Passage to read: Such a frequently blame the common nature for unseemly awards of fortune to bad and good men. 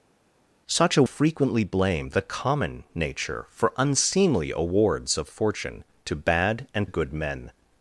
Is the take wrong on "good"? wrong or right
right